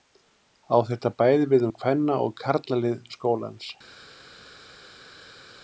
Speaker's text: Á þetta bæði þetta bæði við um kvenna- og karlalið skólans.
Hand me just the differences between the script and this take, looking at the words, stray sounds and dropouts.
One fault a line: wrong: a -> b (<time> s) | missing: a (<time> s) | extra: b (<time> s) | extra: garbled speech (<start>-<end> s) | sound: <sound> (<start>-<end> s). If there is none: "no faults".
missing: þetta bæði (1.4 s)